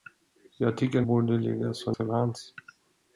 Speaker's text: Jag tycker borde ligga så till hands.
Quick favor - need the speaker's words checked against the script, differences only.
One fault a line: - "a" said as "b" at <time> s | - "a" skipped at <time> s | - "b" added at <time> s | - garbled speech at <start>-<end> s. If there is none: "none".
none